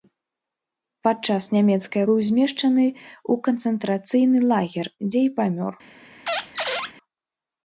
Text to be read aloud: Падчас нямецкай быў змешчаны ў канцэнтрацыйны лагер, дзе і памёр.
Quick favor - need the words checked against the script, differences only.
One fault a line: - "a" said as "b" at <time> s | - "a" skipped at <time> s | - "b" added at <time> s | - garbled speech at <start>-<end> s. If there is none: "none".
none